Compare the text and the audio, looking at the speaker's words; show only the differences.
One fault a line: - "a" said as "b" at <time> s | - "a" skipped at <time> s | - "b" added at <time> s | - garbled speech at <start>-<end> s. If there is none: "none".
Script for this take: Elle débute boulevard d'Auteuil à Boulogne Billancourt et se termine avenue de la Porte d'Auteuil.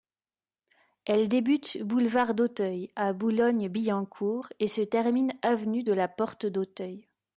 none